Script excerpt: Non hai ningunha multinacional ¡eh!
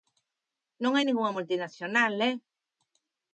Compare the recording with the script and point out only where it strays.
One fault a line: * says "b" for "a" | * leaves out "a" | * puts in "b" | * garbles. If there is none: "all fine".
all fine